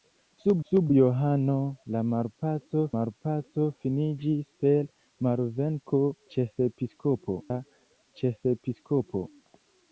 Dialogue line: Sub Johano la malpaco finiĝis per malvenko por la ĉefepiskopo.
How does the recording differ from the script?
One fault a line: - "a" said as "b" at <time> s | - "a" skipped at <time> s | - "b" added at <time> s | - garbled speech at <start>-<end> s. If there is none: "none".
- "sub" added at 0.7 s
- "malpaco" added at 3.0 s
- "por" said as "ĉefepiskopo" at 6.4 s